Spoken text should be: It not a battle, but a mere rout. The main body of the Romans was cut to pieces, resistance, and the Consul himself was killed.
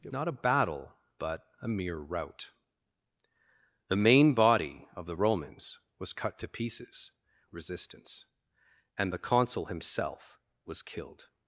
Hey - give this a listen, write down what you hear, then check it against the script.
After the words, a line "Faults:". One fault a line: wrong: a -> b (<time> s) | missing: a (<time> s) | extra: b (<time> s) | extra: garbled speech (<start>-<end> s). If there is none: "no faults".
It not a battle, but a mere rout. The main body of the Romans was cut to pieces, resistance, and the Consul himself was killed.
Faults:
no faults